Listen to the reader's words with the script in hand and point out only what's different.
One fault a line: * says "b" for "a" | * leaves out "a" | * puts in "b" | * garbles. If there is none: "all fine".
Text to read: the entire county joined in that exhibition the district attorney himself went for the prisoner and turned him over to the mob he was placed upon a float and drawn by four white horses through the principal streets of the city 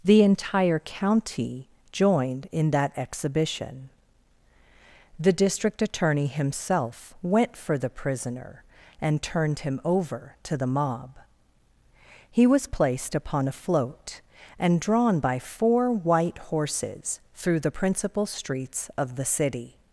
all fine